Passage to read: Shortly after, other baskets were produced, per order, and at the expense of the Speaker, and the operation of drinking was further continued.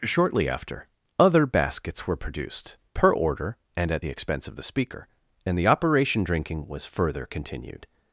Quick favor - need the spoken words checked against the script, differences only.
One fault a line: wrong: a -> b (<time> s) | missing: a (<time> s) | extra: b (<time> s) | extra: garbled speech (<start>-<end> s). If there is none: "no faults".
missing: of (6.2 s)